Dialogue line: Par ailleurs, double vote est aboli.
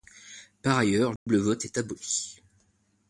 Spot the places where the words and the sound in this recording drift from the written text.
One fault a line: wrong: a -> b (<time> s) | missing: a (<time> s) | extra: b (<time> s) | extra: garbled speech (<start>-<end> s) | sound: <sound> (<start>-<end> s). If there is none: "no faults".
sound: dropout (1.2-1.3 s)